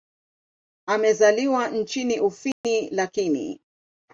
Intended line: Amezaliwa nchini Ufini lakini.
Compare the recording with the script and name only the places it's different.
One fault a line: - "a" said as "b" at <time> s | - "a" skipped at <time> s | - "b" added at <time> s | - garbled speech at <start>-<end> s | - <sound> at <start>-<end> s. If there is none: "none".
- dropout at 2.5-2.6 s